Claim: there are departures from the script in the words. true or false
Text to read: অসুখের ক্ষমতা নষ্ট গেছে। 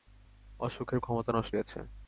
false